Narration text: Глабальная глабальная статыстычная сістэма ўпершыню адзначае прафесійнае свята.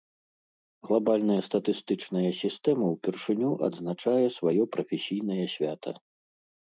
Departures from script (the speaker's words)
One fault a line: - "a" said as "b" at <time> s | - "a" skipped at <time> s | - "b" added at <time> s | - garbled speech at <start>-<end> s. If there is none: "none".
- "глабальная" skipped at 1.4 s
- "сваё" added at 4.4 s